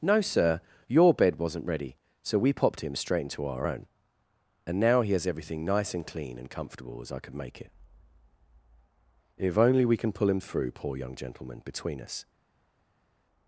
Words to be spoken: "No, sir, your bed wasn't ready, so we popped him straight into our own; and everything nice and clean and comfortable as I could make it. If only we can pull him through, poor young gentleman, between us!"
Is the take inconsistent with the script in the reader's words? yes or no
yes